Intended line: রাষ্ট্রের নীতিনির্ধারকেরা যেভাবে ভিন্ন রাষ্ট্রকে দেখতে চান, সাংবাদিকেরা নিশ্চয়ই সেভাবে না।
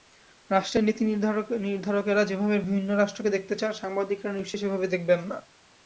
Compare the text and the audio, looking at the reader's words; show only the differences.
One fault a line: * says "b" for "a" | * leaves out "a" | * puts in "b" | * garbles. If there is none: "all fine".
* puts in "দেখবেন"